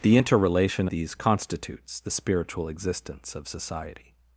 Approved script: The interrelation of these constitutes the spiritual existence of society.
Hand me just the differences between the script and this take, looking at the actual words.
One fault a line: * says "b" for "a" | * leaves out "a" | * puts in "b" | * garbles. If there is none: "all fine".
* leaves out "of"